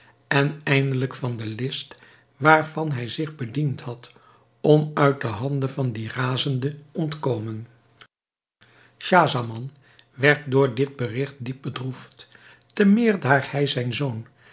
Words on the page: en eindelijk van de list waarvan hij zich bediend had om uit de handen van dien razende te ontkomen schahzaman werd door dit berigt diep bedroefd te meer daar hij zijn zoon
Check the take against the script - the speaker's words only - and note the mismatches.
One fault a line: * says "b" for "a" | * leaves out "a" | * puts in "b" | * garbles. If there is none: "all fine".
* leaves out "te"